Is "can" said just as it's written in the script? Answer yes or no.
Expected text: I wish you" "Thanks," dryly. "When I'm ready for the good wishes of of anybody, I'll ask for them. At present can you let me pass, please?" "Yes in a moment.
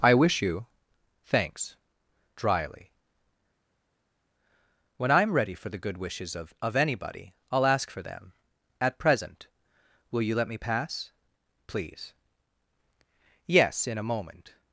no